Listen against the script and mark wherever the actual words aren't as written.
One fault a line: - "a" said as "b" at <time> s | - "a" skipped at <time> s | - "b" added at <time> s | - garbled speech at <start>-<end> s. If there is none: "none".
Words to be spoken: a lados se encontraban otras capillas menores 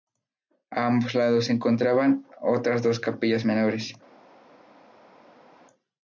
- "ambos" added at 0.9 s
- "dos" added at 2.8 s